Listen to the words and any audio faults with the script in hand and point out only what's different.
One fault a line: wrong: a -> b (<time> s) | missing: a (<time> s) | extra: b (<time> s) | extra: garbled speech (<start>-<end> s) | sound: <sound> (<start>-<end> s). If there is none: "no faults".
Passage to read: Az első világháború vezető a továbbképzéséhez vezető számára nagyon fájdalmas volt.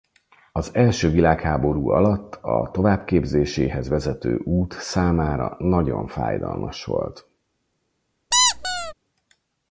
wrong: vezető -> alatt (1.9 s)
extra: út (4.4 s)
sound: squeak (8.3-8.9 s)